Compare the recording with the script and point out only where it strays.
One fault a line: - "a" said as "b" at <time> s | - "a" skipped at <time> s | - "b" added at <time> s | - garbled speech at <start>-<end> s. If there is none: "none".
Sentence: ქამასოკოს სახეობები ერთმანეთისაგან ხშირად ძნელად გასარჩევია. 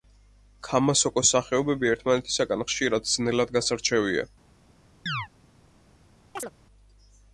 none